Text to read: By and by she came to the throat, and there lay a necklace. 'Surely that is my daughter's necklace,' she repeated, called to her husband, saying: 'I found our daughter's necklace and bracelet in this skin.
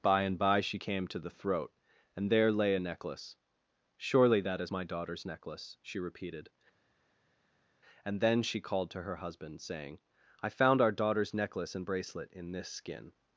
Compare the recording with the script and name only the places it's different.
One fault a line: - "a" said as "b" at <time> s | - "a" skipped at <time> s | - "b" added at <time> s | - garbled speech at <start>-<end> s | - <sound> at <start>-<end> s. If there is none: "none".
- "and then she" added at 8.0 s